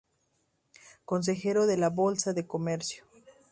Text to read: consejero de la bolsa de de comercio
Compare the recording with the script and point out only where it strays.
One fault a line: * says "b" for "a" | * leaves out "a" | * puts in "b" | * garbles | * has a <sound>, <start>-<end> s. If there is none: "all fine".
* leaves out "de"